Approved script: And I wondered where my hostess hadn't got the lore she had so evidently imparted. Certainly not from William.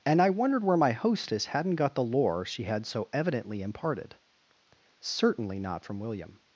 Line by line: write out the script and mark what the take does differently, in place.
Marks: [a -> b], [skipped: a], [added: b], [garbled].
And I wondered where my hostess hadn't got the lore she had so evidently imparted. Certainly not from William.